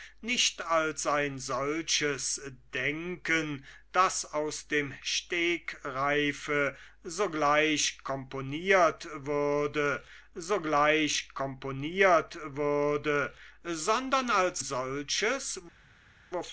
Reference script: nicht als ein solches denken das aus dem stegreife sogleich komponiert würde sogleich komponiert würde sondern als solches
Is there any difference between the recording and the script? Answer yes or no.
no